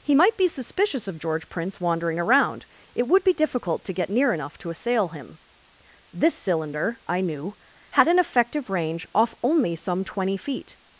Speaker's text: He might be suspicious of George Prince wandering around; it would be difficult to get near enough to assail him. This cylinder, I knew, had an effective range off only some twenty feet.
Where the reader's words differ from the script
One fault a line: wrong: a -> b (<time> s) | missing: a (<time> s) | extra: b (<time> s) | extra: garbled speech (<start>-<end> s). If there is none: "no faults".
no faults